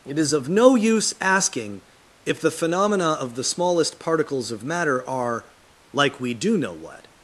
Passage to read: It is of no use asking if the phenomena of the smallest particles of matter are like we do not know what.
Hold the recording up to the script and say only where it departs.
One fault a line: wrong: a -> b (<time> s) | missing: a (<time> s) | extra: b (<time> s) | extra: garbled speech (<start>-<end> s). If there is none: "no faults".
missing: not (6.6 s)